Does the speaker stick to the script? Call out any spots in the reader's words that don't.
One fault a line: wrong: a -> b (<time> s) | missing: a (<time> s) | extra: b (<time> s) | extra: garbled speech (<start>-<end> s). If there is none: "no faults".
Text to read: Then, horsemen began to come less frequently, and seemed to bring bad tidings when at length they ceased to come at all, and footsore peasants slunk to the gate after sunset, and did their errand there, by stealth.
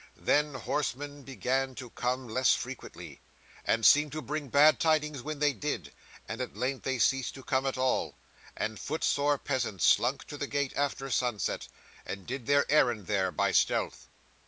extra: they did and (5.4 s)